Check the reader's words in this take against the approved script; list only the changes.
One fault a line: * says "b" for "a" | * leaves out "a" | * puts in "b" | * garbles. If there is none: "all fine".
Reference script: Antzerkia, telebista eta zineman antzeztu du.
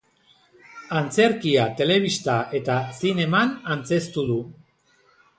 all fine